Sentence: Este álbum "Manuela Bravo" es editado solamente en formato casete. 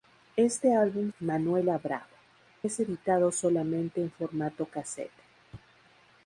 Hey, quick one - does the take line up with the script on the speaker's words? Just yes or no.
yes